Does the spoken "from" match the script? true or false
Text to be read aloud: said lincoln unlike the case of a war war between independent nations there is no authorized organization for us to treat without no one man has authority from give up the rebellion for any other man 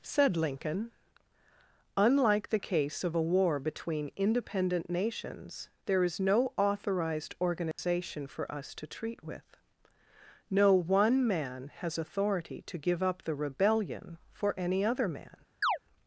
false